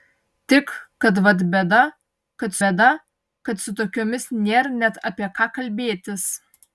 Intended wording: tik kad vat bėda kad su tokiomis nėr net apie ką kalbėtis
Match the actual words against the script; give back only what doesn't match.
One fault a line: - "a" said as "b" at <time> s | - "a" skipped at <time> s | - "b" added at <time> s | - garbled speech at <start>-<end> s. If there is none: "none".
- "bėda kad" added at 2.6 s